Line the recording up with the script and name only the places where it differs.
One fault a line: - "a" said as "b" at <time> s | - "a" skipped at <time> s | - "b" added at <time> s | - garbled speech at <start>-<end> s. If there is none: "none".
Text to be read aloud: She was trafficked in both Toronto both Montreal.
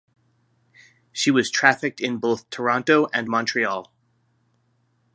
- "both" said as "and" at 3.1 s